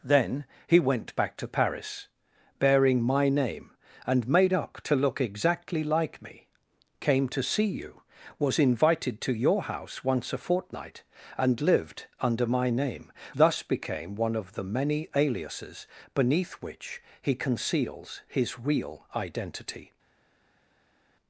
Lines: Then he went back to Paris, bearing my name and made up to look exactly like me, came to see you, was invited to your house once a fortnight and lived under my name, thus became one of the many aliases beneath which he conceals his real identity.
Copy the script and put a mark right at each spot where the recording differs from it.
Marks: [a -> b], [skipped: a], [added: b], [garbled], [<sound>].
Then he went back to Paris, bearing my name and made up to look exactly like me, came to see you, was invited to your house once a fortnight and lived under my name, thus became one of the many aliases beneath which he conceals his real identity.